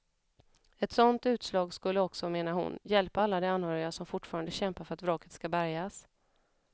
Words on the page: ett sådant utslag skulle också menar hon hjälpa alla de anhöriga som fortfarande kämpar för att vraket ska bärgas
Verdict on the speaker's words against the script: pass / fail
pass